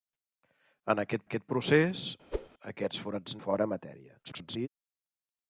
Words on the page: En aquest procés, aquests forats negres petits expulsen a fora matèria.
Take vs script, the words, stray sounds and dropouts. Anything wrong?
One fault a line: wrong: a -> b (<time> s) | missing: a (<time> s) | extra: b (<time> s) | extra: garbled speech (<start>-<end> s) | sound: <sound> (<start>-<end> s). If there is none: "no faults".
extra: aquest (1.2 s)
sound: whoosh (2.3-2.5 s)
missing: negres petits expulsen (3.4 s)
extra: garbled speech (4.2-4.7 s)